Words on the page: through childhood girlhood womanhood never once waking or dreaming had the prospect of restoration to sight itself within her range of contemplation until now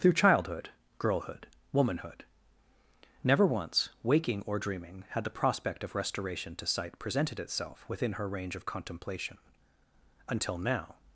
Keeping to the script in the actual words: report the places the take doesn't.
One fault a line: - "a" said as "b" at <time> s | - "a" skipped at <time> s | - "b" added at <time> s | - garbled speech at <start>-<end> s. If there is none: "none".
- "presented" added at 7.0 s